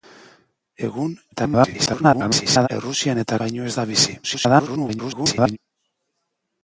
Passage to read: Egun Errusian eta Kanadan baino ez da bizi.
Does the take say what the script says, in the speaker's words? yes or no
no